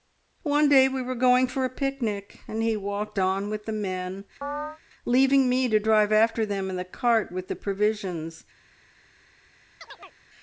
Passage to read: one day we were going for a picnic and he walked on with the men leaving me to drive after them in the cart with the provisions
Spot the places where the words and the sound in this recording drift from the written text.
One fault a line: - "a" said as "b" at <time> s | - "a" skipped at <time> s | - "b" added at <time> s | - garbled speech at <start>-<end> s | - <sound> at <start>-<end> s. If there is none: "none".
- chirp at 4.4-4.8 s
- chirp at 9.8-10.2 s